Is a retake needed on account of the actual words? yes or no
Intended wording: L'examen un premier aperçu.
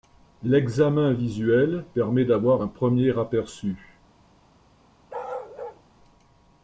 yes